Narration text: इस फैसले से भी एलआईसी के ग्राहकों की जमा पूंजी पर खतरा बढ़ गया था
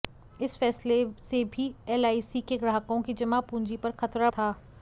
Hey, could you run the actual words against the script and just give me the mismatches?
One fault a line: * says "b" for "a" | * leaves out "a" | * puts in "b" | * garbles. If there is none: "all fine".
* leaves out "बढ़ गया"